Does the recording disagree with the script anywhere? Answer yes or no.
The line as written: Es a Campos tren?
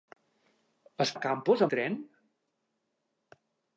no